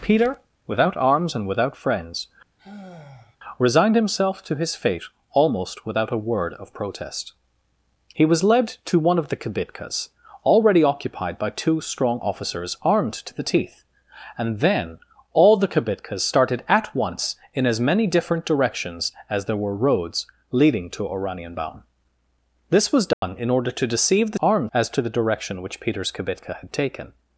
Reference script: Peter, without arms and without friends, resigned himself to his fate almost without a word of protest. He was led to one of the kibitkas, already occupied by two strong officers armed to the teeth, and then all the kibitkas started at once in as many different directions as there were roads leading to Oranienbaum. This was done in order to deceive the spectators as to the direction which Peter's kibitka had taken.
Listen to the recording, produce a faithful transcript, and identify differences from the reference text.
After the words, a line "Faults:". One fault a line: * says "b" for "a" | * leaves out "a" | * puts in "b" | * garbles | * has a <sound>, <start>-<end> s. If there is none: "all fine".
Peter, without arms and without friends, resigned himself to his fate almost without a word of protest. He was led to one of the kibitkas, already occupied by two strong officers armed to the teeth, and then all the kibitkas started at once in as many different directions as there were roads leading to Oranienbaum. This was done in order to deceive the armed as to the direction which Peter's kibitka had taken.
Faults:
* has a sigh, 2.6-3.4 s
* has a dropout, 23.1-23.2 s
* says "armed" for "spectators"